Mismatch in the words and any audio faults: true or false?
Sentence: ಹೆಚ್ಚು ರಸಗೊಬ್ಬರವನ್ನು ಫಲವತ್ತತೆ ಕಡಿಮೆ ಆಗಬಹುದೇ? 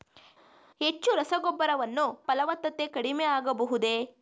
false